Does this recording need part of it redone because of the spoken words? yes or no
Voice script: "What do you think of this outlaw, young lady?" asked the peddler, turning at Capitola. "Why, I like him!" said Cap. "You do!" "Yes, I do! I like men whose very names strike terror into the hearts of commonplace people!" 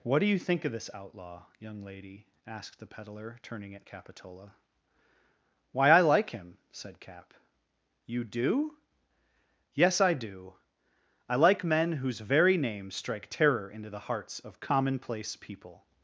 no